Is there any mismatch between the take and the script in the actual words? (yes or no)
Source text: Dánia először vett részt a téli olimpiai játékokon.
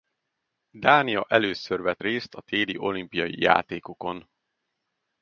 no